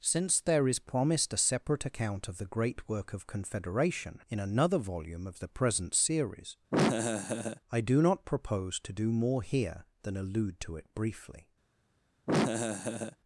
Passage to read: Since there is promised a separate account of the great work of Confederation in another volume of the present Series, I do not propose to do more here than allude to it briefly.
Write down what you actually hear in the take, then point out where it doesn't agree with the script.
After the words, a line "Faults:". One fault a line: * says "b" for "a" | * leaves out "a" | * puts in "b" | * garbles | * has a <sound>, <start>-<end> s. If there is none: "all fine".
Since there is promised a separate account of the great work of Confederation in another volume of the present Series, I do not propose to do more here than allude to it briefly.
Faults:
* has a laugh, 6.7-7.6 s
* has a laugh, 12.3-13.2 s